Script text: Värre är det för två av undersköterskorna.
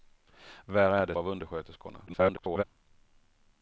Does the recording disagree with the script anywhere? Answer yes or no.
yes